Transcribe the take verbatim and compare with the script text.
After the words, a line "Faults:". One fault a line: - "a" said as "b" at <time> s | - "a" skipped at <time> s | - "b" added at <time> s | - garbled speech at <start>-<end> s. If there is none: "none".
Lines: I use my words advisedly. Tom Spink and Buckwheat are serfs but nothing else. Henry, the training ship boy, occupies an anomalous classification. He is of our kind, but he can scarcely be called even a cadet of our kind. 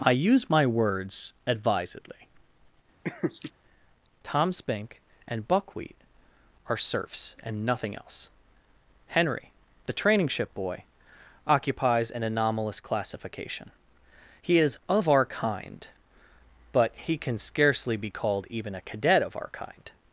I use my words advisedly. Tom Spink and Buckwheat are serfs and nothing else. Henry, the training ship boy, occupies an anomalous classification. He is of our kind, but he can scarcely be called even a cadet of our kind.
Faults:
- "but" said as "and" at 7.4 s